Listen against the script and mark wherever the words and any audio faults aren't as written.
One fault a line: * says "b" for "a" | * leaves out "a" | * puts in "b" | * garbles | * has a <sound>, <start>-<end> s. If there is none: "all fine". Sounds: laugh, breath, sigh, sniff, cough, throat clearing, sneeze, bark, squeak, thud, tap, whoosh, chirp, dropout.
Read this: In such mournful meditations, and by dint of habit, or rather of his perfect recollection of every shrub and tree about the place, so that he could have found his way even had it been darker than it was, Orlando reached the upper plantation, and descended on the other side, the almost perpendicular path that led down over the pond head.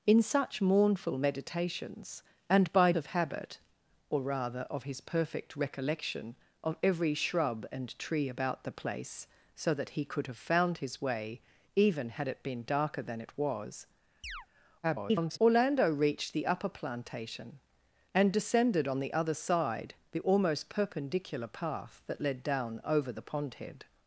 * leaves out "dint"
* has a chirp, 14.2-14.5 s
* garbles